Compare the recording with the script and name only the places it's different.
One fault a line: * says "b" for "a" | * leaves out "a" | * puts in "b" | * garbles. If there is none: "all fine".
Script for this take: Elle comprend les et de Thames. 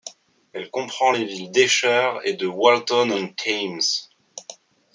* puts in "villes d'Esher"
* puts in "Walton on"